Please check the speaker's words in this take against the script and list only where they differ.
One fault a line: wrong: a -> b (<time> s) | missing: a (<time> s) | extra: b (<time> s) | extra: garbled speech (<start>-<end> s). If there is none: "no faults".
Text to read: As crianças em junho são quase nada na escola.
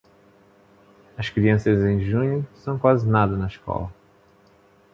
no faults